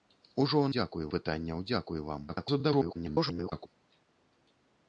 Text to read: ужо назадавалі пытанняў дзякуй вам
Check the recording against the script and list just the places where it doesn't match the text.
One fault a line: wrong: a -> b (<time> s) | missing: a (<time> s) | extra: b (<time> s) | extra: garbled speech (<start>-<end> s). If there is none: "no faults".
wrong: назадавалі -> дзякуй (0.8 s)
extra: garbled speech (2.3-3.7 s)